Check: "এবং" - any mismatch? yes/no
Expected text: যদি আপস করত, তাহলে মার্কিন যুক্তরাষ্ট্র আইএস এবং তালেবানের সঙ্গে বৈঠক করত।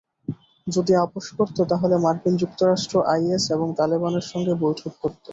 no